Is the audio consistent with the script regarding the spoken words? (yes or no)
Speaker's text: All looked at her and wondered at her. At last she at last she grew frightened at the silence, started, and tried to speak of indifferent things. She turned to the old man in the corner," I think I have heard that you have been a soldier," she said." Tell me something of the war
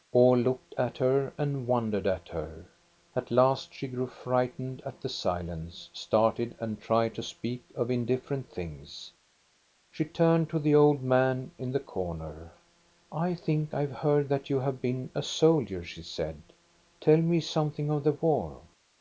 no